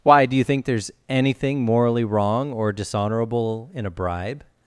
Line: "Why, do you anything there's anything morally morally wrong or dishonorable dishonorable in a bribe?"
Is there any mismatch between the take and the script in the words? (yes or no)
yes